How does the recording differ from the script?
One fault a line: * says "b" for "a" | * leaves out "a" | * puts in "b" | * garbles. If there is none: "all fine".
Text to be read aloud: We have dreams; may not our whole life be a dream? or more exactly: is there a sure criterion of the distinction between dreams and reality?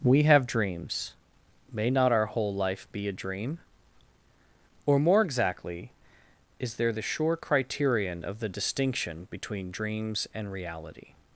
* says "the" for "a"